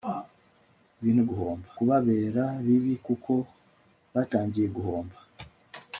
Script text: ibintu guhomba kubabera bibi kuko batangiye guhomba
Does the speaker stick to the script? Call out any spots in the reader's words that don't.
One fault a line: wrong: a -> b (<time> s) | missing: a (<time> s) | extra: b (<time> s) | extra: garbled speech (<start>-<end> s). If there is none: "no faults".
no faults